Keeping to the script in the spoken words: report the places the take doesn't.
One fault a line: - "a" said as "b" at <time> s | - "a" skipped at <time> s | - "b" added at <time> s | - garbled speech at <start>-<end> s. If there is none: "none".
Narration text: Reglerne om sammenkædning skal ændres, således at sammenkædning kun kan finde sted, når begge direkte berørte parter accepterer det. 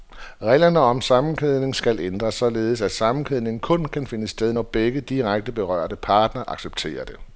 none